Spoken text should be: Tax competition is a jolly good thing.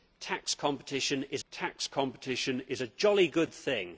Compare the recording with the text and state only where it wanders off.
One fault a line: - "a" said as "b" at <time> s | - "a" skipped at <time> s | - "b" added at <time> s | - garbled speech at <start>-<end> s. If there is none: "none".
- "tax competition is" added at 1.5 s